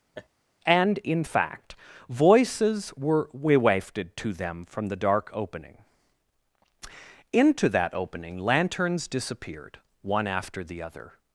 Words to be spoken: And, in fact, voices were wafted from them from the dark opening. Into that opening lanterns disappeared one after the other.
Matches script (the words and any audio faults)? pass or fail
fail